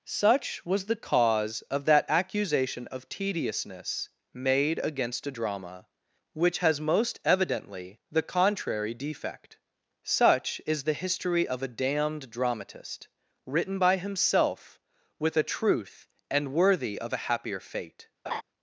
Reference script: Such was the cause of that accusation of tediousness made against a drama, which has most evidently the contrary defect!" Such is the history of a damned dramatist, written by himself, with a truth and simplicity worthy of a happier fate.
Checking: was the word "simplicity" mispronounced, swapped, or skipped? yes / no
yes